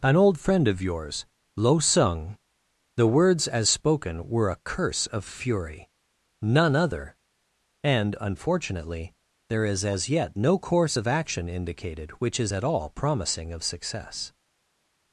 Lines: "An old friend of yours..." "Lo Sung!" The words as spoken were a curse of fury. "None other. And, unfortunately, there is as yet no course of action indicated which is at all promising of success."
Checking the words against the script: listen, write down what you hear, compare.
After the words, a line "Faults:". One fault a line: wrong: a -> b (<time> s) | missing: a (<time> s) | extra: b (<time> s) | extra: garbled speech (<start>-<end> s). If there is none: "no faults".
"An old friend of yours..." "Lo Sung!" The words as spoken were a curse of fury. "None other. And, unfortunately, there is as yet no course of action indicated which is at all promising of success."
Faults:
no faults